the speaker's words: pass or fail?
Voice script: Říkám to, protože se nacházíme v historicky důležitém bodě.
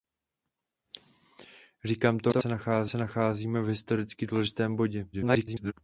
fail